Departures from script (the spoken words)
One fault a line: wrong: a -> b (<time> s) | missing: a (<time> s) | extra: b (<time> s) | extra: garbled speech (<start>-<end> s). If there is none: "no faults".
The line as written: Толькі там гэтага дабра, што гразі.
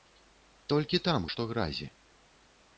missing: гэтага дабра (1.3 s)